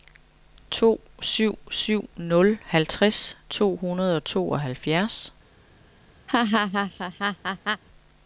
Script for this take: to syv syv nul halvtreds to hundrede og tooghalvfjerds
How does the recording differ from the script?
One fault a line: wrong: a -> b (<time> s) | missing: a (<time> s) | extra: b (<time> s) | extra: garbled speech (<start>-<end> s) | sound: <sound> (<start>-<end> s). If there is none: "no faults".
sound: laugh (6.3-7.8 s)